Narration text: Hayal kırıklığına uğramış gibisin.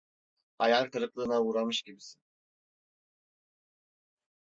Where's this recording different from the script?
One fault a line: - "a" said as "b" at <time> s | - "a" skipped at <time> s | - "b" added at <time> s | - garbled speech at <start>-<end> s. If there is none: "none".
none